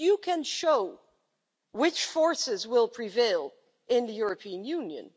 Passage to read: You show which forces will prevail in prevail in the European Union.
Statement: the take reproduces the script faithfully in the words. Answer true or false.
false